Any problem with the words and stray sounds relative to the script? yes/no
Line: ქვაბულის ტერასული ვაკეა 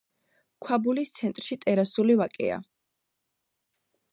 yes